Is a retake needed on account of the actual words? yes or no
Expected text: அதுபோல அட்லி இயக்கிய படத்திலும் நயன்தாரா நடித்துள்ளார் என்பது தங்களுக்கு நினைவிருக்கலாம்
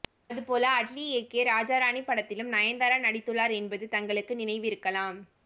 yes